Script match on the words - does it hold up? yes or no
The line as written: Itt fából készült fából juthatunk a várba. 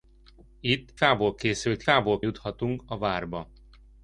yes